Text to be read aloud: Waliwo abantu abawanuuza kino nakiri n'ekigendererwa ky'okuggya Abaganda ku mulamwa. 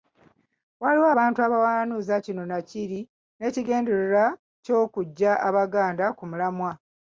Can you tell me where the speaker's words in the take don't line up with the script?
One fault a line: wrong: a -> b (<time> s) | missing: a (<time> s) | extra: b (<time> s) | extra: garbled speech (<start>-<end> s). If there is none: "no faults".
no faults